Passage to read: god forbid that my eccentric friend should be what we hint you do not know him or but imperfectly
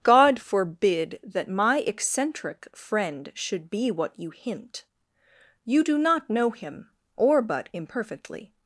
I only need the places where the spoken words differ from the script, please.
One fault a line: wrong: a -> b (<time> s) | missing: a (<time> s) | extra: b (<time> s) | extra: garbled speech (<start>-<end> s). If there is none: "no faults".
wrong: we -> you (4.2 s)